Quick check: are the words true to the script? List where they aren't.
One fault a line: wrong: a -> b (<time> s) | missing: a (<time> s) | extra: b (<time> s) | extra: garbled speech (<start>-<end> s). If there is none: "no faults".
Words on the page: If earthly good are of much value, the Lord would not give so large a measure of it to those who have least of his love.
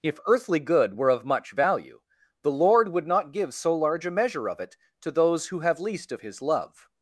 wrong: are -> were (1.0 s)